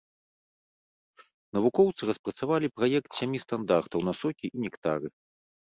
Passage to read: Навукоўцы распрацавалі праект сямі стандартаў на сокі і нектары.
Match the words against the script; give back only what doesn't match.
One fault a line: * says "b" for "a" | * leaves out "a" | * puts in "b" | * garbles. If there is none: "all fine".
all fine